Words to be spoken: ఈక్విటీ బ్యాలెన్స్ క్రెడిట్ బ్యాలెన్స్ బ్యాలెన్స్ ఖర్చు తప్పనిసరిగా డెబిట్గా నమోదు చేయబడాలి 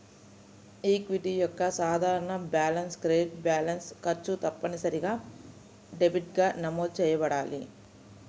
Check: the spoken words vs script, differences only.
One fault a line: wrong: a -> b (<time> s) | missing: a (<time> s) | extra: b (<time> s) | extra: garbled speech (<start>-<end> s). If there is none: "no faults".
extra: యొక్క సాధారణ (1.3 s)
missing: బ్యాలెన్స్ (3.9 s)